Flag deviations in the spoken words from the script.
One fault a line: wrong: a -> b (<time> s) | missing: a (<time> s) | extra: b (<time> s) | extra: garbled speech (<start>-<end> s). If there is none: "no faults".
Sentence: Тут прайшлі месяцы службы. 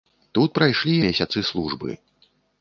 no faults